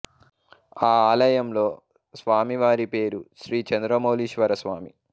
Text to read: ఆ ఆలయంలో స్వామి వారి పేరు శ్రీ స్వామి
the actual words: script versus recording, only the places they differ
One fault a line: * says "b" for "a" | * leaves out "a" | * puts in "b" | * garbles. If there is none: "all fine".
* puts in "చంద్రమౌళీశ్వర"